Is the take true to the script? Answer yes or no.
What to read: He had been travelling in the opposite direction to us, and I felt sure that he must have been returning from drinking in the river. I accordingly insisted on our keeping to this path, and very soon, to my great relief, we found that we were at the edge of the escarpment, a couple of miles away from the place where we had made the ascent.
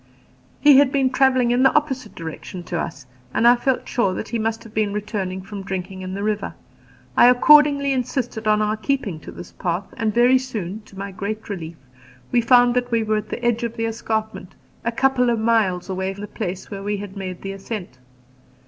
no